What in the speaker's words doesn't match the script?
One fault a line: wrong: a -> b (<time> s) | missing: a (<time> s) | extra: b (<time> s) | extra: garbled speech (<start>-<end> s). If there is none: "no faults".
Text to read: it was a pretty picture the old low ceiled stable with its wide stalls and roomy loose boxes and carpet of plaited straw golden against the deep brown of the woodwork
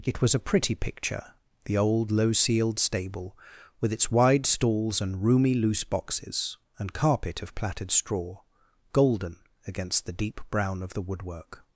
no faults